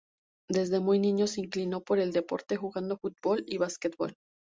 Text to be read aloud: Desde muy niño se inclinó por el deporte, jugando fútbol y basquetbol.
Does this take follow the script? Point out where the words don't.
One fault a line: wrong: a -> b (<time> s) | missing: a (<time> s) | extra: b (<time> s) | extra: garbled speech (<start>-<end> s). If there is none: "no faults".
no faults